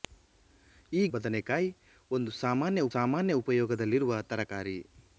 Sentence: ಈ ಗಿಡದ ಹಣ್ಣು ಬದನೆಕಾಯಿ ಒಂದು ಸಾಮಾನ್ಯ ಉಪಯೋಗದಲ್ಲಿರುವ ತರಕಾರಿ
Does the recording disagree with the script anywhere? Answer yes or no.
yes